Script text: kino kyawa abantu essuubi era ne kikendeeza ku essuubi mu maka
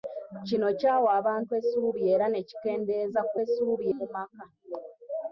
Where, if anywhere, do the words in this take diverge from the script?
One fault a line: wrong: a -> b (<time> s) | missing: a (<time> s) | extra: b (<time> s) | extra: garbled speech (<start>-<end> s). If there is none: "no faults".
no faults